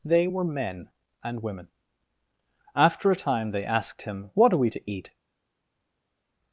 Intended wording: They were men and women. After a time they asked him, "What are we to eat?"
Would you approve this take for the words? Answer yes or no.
yes